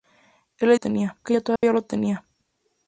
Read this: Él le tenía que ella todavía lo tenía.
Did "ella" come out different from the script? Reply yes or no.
no